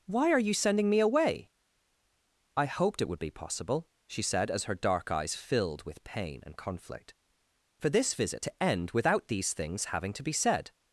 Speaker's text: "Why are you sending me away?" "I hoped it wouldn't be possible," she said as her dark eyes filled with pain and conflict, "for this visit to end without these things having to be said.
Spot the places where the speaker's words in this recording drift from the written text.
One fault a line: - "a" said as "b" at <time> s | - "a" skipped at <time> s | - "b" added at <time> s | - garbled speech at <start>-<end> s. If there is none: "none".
- "wouldn't" said as "would" at 3.1 s